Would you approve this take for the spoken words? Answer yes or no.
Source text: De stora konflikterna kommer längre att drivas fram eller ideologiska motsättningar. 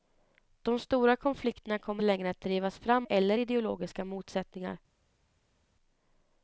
yes